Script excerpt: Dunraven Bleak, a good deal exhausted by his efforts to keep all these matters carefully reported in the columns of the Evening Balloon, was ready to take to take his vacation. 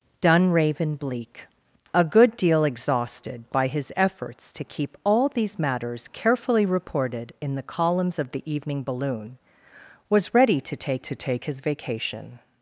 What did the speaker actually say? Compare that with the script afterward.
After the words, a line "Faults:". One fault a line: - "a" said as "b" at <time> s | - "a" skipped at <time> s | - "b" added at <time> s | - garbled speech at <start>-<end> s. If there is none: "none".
Dunraven Bleak, a good deal exhausted by his efforts to keep all these matters carefully reported in the columns of the Evening Balloon, was ready to take to take his vacation.
Faults:
none